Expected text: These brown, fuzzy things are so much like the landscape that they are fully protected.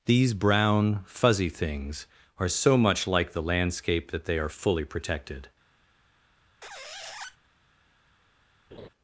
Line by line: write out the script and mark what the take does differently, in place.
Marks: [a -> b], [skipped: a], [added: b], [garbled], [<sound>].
These brown, fuzzy things are so much like the landscape that they are fully protected. [squeak] [laugh]